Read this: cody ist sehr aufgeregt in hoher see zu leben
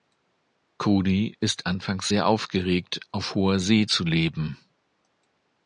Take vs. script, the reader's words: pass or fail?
fail